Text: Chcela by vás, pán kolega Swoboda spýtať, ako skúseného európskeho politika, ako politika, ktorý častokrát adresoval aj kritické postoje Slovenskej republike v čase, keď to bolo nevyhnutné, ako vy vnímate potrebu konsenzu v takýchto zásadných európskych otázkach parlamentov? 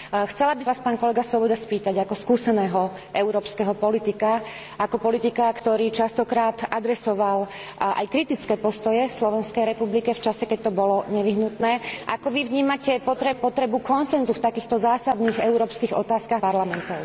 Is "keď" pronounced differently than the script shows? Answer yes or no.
no